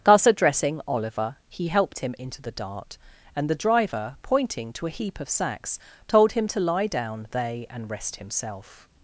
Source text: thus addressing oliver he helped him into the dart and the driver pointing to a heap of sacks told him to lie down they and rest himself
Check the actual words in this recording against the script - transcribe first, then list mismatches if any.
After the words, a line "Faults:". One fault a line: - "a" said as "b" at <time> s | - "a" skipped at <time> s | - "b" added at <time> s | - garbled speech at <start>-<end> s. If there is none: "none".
thus addressing oliver he helped him into the dart and the driver pointing to a heap of sacks told him to lie down they and rest himself
Faults:
none